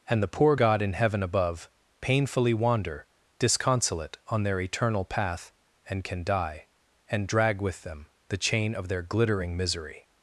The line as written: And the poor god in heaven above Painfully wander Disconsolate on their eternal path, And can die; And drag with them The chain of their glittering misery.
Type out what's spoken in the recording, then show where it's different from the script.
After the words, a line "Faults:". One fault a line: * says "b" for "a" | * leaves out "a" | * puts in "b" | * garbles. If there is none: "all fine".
And the poor god in heaven above Painfully wander Disconsolate on their eternal path, And can die; And drag with them The chain of their glittering misery.
Faults:
all fine